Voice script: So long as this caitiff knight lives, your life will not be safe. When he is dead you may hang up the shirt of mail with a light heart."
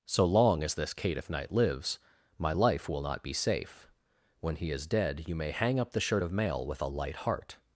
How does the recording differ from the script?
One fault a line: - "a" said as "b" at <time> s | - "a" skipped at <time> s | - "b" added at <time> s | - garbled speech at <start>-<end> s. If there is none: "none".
- "your" said as "my" at 2.4 s